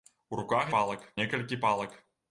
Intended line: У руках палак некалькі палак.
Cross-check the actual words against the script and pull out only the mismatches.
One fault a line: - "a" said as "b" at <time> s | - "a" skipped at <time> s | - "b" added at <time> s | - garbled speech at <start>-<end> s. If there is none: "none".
none